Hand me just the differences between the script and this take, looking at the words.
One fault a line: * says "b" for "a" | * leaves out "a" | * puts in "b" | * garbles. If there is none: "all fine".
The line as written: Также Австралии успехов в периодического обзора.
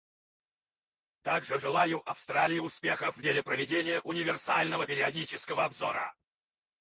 * puts in "желаю"
* puts in "деле проведения универсального"